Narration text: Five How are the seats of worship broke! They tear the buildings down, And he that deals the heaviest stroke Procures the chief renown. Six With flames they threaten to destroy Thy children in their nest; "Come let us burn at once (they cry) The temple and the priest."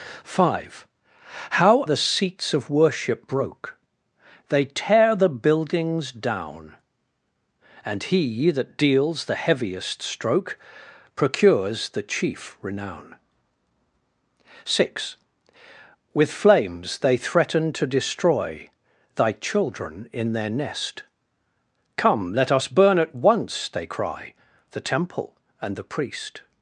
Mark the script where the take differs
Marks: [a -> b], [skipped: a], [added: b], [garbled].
Five How [skipped: are] the seats of worship broke! They tear the buildings down, And he that deals the heaviest stroke Procures the chief renown. Six With flames they threaten to destroy Thy children in their nest; "Come let us burn at once (they cry) The temple and the priest."